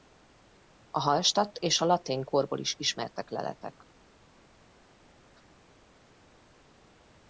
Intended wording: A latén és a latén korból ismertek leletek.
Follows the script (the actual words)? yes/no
no